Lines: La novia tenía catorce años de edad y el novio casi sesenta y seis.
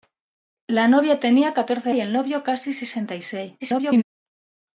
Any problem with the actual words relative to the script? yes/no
yes